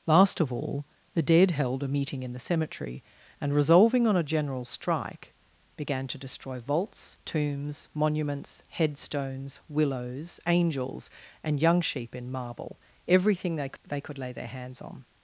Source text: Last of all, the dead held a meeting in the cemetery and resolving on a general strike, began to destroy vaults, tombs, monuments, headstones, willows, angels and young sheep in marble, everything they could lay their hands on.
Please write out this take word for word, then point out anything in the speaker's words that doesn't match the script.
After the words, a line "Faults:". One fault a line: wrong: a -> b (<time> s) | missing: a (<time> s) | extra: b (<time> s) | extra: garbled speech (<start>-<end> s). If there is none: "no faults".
Last of all, the dead held a meeting in the cemetery and resolving on a general strike, began to destroy vaults, tombs, monuments, headstones, willows, angels and young sheep in marble, everything they they could lay their hands on.
Faults:
extra: they (13.9 s)